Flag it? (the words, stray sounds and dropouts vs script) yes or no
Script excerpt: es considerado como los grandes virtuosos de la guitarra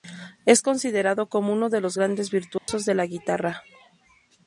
yes